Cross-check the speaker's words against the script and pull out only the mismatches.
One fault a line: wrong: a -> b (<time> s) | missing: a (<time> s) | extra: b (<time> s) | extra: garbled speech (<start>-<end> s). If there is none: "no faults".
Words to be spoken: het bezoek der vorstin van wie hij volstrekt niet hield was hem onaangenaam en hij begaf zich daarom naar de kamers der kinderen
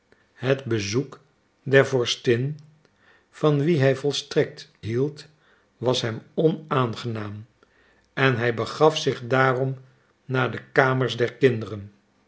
missing: niet (4.7 s)